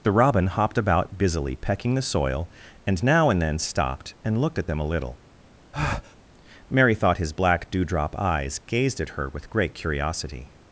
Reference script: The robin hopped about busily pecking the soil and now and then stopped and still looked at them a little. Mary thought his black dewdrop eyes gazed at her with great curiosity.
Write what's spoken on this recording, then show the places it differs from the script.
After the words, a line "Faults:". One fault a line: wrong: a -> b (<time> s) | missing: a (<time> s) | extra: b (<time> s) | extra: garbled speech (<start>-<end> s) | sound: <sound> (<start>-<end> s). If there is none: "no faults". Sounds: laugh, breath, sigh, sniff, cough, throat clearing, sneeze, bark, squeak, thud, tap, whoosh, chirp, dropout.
The robin hopped about busily pecking the soil and now and then stopped and looked at them a little. Mary thought his black dewdrop eyes gazed at her with great curiosity.
Faults:
missing: still (4.4 s)
sound: breath (5.7-6.2 s)